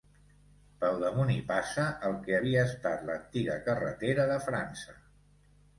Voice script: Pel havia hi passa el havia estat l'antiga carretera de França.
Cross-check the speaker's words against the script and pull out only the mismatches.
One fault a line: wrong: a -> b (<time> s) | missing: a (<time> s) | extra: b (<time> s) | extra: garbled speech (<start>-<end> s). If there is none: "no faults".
wrong: havia -> damunt (1.0 s)
extra: que (2.3 s)